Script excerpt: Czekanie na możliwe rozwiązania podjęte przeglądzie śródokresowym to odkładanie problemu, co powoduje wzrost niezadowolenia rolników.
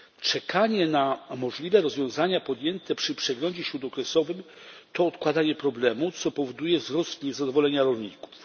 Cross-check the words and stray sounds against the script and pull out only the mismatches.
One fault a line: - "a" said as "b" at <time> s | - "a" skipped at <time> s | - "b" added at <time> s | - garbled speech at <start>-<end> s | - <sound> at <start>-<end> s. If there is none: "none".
- "przy" added at 3.0 s